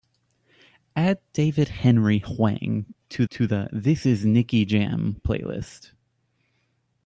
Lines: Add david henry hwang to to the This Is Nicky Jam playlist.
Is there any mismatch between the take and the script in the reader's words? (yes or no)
no